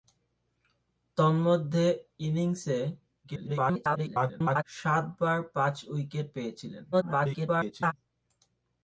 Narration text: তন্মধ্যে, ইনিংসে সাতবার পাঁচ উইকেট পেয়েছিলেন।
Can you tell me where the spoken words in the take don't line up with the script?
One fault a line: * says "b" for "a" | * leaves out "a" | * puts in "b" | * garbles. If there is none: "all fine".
* garbles
* garbles